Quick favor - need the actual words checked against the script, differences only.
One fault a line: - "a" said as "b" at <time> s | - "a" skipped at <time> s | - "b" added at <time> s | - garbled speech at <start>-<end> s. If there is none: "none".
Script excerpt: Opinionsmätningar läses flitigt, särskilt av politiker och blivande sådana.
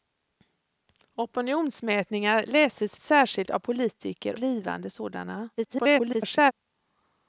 - "flitigt" skipped at 3.0 s
- "och" skipped at 4.4 s
- garbled speech at 5.6-6.5 s